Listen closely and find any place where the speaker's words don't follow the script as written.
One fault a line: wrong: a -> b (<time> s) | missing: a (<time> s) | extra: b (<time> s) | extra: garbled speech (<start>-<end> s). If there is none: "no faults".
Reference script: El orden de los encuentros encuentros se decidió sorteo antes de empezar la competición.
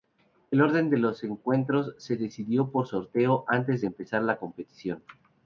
missing: encuentros (1.9 s)
extra: por (2.7 s)